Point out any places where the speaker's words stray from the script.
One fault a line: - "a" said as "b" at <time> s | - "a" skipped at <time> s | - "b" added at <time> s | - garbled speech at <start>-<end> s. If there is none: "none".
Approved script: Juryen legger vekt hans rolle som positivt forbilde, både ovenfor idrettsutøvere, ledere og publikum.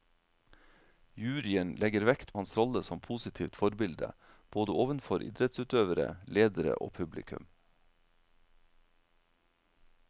none